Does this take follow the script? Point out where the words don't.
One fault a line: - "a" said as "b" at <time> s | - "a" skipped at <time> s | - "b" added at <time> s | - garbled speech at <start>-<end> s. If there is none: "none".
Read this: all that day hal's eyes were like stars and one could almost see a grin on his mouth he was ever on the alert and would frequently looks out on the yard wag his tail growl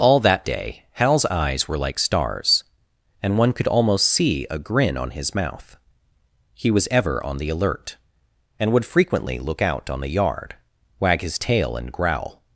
- "looks" said as "look" at 9.4 s
- "and" added at 11.8 s